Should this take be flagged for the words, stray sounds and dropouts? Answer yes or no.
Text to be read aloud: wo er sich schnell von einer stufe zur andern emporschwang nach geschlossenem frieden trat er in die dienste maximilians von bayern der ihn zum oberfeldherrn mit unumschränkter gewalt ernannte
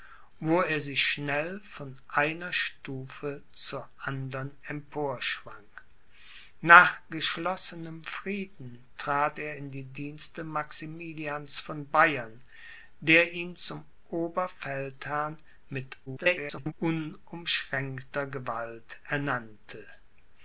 yes